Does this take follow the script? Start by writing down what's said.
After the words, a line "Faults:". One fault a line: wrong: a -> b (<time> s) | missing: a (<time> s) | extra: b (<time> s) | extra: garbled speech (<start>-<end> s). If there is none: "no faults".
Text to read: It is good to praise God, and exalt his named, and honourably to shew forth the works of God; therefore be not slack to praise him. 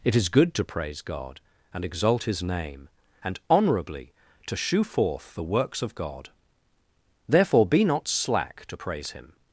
It is good to praise God, and exalt his name, and honourably to shew forth the works of God; therefore be not slack to praise him.
Faults:
wrong: named -> name (2.4 s)